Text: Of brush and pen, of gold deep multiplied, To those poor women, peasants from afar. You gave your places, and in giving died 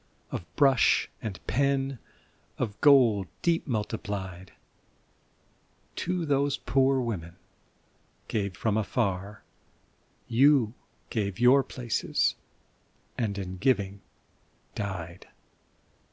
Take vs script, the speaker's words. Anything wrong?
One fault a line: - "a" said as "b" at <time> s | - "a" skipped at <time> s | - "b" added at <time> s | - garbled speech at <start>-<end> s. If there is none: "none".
- "peasants" said as "gave" at 8.3 s